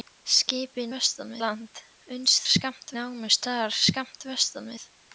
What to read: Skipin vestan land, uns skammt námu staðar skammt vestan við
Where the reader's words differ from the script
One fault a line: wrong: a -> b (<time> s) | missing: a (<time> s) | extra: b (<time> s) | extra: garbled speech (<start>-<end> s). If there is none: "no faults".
no faults